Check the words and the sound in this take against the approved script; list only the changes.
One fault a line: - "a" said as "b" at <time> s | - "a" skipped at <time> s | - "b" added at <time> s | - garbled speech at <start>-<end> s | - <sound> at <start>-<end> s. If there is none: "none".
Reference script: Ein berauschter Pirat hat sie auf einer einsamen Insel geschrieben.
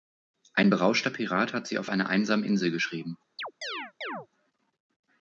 - chirp at 3.4-4.3 s